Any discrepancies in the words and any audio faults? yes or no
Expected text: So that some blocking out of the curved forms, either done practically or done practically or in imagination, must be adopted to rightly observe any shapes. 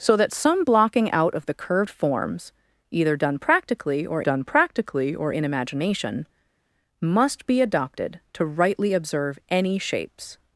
no